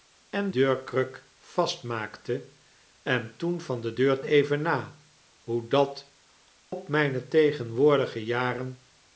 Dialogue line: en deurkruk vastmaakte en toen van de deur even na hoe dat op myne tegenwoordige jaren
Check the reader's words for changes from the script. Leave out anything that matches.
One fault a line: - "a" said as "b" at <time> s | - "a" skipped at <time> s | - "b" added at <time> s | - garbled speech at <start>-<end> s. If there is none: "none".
none